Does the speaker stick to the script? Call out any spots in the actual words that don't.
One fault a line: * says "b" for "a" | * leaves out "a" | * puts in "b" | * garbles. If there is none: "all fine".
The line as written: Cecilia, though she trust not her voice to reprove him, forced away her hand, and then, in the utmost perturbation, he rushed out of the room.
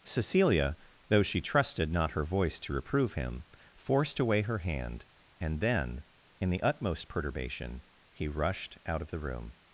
* says "trusted" for "trust"